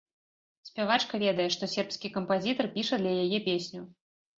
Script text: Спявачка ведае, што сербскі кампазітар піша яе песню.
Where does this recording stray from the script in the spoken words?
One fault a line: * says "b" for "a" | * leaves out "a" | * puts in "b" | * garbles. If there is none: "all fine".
* puts in "для"